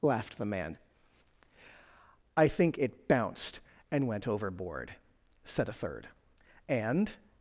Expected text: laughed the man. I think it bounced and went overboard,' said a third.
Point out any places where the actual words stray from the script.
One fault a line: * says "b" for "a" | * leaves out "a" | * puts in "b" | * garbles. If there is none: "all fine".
* puts in "And"